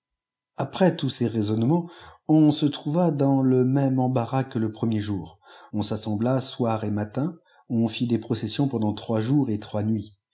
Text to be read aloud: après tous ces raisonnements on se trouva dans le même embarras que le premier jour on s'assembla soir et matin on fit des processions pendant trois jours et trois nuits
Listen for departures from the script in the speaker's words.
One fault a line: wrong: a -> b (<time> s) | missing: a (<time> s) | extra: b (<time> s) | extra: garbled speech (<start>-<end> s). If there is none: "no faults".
no faults